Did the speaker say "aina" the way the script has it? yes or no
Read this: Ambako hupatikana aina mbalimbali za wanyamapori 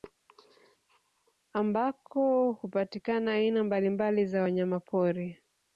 yes